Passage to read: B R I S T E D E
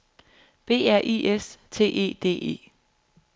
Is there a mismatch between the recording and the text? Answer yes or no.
no